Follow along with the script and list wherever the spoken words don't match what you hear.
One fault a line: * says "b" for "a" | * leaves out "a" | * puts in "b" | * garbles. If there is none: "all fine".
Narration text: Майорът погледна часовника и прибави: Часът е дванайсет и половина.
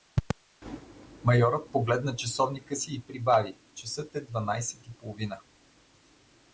* puts in "си"